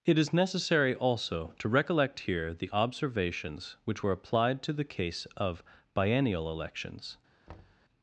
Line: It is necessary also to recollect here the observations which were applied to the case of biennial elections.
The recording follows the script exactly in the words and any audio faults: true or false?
false